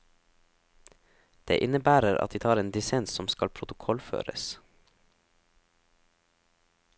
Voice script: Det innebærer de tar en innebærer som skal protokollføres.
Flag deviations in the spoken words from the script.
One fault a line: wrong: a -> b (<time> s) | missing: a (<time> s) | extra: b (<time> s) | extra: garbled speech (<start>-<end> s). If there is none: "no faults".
extra: at (2.2 s)
wrong: innebærer -> dissens (2.7 s)